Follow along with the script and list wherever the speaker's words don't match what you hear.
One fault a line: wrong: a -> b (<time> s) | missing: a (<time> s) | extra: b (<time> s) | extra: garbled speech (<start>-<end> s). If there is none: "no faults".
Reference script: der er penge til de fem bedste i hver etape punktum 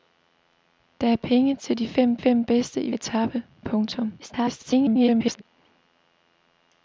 extra: fem (2.1 s)
missing: hver (2.9 s)
extra: garbled speech (4.2-5.4 s)